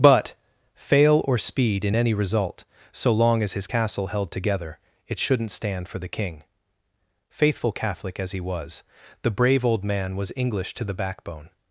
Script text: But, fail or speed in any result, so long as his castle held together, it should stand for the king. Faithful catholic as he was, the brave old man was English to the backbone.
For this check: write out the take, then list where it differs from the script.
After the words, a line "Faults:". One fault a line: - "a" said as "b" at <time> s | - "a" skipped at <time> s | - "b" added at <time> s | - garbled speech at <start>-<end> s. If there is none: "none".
But, fail or speed in any result, so long as his castle held together, it shouldn't stand for the king. Faithful catholic as he was, the brave old man was English to the backbone.
Faults:
- "should" said as "shouldn't" at 5.2 s